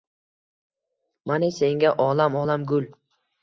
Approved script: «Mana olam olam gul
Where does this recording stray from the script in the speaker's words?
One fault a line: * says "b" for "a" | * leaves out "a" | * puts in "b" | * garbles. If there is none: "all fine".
* puts in "senga"